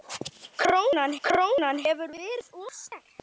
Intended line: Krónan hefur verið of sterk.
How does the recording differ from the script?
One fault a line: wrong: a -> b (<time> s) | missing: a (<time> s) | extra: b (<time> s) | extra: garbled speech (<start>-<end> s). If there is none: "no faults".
extra: krónan (1.3 s)